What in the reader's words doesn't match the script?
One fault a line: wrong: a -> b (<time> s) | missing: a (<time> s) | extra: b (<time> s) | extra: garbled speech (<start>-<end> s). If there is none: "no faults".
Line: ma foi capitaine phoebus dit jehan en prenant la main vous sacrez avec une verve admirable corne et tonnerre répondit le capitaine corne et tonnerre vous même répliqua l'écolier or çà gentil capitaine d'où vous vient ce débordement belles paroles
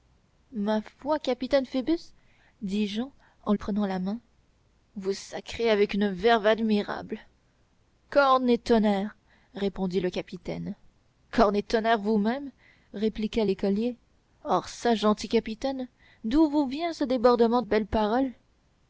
no faults